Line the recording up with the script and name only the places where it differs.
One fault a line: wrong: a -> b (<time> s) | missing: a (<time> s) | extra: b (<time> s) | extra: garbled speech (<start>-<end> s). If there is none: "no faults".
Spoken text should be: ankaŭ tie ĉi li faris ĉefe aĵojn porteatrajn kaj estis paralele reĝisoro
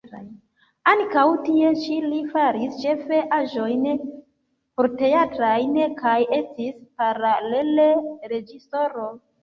no faults